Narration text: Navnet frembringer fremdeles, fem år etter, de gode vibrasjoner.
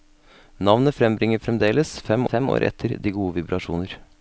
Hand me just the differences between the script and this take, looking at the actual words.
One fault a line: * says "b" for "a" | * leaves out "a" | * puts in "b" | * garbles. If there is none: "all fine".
* puts in "fem"